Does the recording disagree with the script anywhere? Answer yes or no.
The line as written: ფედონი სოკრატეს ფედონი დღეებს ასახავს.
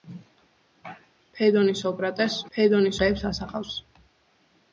no